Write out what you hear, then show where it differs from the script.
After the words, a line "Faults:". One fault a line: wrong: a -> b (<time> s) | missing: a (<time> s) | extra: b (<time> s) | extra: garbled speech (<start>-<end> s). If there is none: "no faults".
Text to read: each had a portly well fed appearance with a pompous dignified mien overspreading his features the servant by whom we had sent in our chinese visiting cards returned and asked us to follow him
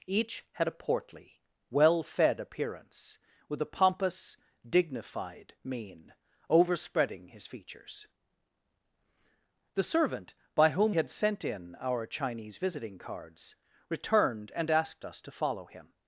each had a portly well fed appearance with a pompous dignified mien overspreading his features the servant by whom had sent in our chinese visiting cards returned and asked us to follow him
Faults:
missing: we (10.9 s)